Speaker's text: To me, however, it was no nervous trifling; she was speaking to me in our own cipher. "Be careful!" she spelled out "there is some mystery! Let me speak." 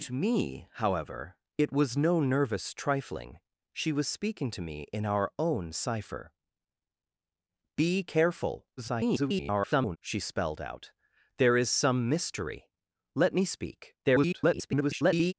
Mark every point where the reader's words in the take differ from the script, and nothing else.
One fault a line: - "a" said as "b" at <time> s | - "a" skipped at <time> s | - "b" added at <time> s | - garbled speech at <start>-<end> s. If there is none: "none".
- garbled speech at 8.8-10.0 s
- garbled speech at 14.0-15.3 s